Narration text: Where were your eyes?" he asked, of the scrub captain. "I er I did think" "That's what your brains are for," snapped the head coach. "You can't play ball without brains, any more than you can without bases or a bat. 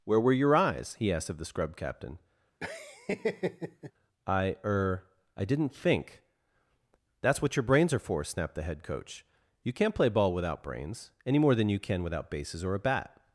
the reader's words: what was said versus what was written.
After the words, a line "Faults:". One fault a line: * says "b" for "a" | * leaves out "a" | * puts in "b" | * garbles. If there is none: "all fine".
Where were your eyes?" he asked, of the scrub captain. "I er I didn't think" "That's what your brains are for," snapped the head coach. "You can't play ball without brains, any more than you can without bases or a bat.
Faults:
* says "didn't" for "did"